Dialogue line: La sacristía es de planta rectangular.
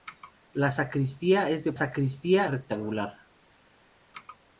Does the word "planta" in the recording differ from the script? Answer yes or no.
yes